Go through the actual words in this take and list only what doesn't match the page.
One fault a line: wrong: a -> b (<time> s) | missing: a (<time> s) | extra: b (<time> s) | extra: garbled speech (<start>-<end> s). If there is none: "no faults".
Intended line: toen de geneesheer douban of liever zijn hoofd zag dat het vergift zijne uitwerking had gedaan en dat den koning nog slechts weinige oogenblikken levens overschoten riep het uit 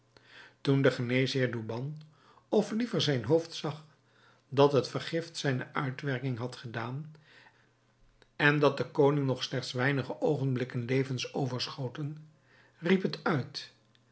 no faults